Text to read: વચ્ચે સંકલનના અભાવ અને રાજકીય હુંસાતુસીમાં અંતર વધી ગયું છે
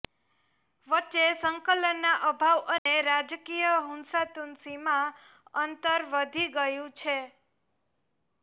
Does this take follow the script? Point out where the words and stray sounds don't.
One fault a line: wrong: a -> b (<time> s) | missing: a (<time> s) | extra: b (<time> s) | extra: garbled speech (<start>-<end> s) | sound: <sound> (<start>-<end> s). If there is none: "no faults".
sound: dropout (2.8-2.9 s)